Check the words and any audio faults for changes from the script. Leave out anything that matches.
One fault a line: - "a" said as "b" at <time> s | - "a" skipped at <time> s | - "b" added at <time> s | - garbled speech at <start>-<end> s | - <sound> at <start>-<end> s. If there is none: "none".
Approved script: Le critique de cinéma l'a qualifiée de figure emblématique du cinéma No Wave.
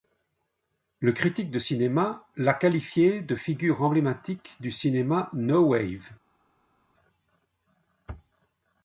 none